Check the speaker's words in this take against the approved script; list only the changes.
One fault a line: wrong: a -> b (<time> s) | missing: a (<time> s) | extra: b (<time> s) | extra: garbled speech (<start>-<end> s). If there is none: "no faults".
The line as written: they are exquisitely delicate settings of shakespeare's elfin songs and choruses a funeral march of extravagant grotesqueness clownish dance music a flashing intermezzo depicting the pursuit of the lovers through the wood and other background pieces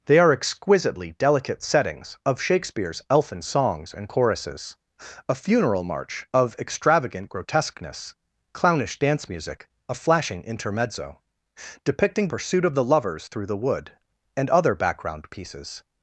missing: the (12.3 s)